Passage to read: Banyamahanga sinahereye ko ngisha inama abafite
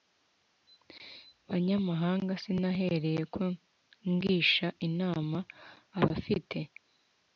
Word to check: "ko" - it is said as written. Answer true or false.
true